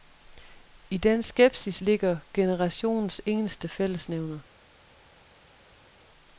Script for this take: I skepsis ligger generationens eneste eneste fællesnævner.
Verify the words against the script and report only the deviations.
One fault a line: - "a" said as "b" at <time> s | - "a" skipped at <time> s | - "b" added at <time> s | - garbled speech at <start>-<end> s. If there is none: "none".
- "den" added at 1.0 s
- "eneste" skipped at 3.7 s